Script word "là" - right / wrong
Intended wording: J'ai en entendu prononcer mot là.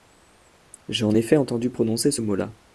right